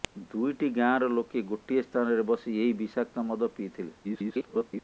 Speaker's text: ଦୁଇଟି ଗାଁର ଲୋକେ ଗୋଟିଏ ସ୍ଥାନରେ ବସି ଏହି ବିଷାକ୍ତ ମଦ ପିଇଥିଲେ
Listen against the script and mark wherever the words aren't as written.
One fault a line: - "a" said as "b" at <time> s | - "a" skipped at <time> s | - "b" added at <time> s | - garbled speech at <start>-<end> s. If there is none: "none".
- garbled speech at 4.0-4.8 s